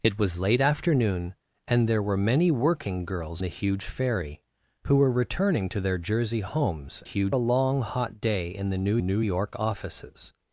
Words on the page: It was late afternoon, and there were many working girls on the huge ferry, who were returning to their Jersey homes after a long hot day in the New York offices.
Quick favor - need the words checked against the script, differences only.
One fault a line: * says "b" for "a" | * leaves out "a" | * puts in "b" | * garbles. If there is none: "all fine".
* leaves out "on"
* says "huge" for "after"
* puts in "New"